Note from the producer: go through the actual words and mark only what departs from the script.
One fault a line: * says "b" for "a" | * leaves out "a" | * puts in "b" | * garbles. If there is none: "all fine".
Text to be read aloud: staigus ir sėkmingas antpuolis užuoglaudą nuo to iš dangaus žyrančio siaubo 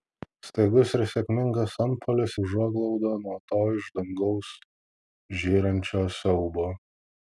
all fine